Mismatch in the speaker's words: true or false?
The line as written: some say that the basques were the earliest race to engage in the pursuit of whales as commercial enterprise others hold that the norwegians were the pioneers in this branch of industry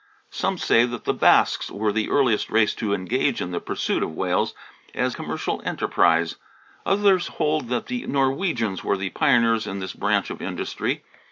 false